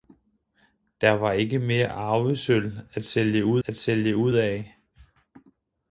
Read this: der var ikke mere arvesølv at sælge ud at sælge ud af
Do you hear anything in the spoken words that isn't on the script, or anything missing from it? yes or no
no